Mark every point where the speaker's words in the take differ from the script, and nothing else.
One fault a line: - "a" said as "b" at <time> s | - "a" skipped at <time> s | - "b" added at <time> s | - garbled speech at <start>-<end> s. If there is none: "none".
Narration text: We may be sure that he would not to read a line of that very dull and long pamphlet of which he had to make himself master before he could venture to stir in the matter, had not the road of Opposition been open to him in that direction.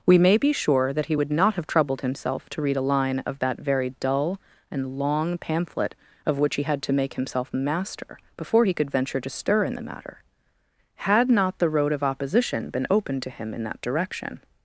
- "have troubled himself" added at 1.6 s